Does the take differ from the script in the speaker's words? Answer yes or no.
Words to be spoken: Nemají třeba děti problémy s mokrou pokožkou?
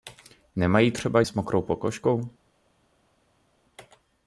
yes